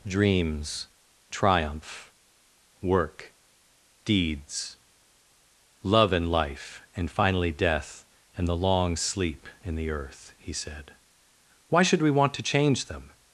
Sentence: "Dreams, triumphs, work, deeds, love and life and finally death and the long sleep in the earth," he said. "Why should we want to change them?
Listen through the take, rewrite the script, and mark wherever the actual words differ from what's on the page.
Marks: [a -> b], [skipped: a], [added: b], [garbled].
"Dreams, [triumphs, -> triumph] work, deeds, love and life and finally death and the long sleep in the earth," he said. "Why should we want to change them?